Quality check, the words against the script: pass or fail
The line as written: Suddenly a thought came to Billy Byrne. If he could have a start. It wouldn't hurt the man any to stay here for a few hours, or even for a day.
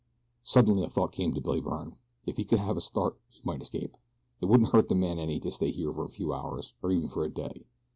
fail